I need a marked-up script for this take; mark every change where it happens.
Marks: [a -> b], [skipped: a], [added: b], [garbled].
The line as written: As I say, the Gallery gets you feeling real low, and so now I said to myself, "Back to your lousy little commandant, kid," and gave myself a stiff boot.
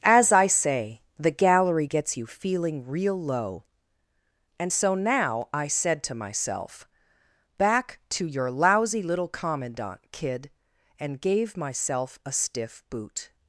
As I say, the Gallery gets you feeling real low, and so now I said to myself, "Back to your lousy little commandant, kid," and gave myself a stiff boot.